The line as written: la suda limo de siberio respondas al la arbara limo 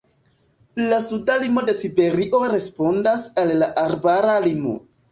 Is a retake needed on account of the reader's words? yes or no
no